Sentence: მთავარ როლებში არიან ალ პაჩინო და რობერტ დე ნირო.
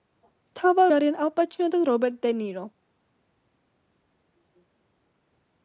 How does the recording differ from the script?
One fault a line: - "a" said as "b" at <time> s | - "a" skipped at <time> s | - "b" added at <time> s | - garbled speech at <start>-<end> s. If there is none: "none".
- "როლებში" skipped at 0.9 s